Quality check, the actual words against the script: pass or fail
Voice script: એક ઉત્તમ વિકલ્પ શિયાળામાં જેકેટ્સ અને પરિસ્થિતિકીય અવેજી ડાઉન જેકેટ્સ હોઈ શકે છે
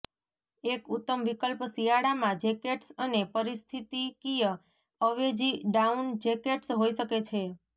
pass